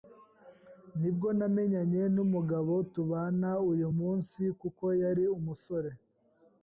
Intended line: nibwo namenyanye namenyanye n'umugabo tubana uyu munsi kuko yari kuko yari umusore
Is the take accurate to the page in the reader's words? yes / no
no